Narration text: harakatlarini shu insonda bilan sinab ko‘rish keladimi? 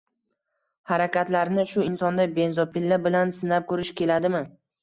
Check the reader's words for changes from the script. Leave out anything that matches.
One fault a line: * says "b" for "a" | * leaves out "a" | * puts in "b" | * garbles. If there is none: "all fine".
* puts in "benzopila"